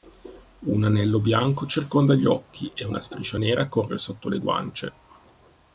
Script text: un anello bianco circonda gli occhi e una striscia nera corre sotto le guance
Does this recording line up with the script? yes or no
yes